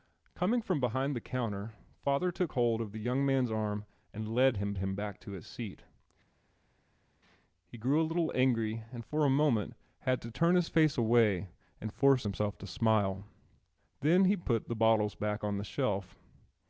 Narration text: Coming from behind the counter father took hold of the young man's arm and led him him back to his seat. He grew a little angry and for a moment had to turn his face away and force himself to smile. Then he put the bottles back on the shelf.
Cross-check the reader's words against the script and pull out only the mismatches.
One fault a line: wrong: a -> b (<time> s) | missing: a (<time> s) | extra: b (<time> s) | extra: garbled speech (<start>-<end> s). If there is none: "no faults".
no faults